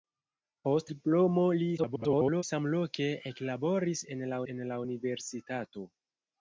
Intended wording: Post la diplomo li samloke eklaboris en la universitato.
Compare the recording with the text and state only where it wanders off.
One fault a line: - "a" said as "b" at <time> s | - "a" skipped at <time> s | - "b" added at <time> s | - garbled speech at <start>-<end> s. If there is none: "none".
- "la" skipped at 0.9 s
- garbled speech at 1.8-2.4 s
- "en la" added at 4.5 s